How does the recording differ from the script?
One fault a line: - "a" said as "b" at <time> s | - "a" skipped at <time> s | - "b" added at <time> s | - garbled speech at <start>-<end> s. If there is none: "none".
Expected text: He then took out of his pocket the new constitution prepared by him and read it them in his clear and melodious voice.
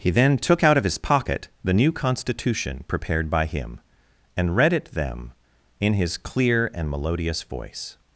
none